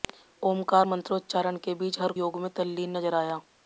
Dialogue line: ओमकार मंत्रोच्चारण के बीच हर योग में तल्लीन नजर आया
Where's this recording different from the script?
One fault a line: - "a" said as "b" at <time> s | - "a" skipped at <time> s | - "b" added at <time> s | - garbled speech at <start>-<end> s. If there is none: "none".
none